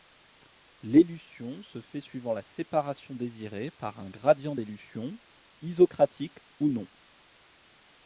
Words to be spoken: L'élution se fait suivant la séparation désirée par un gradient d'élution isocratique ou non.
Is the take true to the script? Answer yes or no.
yes